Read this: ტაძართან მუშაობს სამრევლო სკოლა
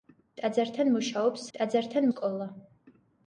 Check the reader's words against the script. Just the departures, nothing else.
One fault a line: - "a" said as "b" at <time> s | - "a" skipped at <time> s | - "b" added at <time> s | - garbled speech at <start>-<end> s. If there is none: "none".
- "სამრევლო" said as "ტაძართან" at 1.6 s